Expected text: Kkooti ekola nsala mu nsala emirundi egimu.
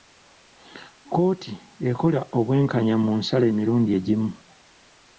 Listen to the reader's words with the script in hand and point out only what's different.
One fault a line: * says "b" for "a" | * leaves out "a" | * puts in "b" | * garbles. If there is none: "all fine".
* says "obwenkanya" for "nsala"